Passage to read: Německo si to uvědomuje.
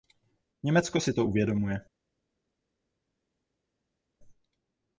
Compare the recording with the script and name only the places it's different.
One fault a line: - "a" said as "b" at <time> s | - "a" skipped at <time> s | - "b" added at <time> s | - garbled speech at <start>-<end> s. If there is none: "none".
none